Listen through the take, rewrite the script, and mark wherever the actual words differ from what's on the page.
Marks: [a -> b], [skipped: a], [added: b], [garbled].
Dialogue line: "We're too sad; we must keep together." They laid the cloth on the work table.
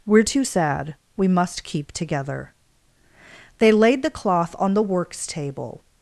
"We're too sad; we must keep together." They laid the cloth on the [work -> works] table.